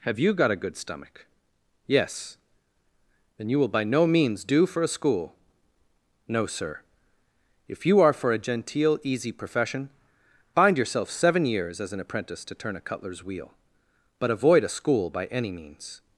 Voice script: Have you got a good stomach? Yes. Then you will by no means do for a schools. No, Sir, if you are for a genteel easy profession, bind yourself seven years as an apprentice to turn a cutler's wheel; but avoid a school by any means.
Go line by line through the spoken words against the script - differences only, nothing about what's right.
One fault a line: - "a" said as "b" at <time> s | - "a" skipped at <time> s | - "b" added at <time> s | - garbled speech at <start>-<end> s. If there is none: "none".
- "schools" said as "school" at 4.9 s